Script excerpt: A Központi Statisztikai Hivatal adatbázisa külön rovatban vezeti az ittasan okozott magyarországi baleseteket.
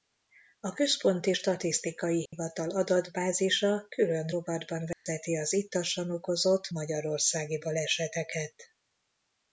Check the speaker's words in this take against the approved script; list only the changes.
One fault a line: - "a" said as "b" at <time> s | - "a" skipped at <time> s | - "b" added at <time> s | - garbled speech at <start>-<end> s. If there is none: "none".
none